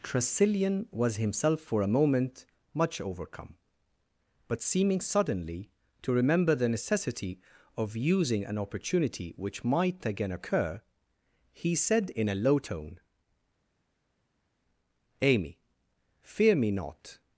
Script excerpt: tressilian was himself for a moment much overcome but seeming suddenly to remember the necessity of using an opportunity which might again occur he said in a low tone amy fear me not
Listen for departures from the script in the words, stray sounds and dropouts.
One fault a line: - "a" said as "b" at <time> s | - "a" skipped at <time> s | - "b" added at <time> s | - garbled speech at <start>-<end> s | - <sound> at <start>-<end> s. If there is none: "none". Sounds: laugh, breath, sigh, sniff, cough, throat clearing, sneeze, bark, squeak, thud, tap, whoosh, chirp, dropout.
none